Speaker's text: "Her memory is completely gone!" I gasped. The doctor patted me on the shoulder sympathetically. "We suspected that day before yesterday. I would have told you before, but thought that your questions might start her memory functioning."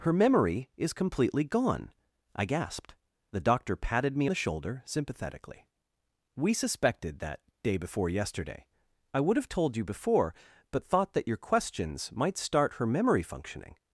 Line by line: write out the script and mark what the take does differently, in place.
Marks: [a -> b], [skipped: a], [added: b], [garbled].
"Her memory is completely gone!" I gasped. The doctor patted me [skipped: on] the shoulder sympathetically. "We suspected that day before yesterday. I would have told you before, but thought that your questions might start her memory functioning."